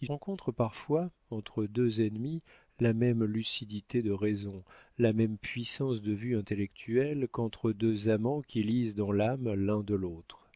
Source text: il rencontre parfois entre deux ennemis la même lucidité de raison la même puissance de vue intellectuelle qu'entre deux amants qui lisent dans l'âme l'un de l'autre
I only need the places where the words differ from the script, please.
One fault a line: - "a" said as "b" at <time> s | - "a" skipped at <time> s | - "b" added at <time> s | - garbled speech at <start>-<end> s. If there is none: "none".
none